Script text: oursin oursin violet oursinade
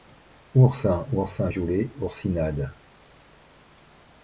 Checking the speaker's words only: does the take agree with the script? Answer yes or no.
yes